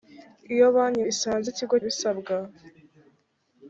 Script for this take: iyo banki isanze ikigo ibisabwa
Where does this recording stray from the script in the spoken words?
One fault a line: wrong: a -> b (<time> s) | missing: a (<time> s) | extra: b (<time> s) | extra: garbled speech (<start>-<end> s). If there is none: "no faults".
no faults